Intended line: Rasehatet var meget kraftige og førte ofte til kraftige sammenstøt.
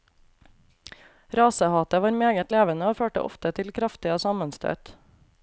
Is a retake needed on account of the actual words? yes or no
yes